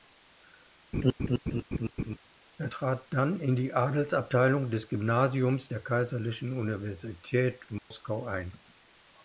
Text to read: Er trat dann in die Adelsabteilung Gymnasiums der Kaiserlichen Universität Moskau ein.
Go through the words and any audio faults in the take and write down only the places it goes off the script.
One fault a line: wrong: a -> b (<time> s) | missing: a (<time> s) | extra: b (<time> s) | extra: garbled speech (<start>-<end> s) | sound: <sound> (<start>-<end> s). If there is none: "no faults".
sound: laugh (0.9-2.2 s)
extra: des (4.7 s)
sound: dropout (7.8-7.9 s)